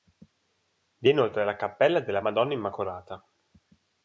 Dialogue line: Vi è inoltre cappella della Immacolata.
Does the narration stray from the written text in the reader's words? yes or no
yes